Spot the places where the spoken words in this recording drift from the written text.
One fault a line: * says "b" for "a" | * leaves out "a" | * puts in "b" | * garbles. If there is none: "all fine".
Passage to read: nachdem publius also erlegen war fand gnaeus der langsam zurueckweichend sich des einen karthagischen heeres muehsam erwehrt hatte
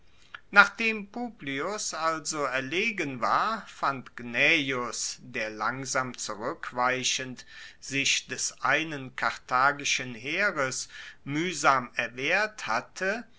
all fine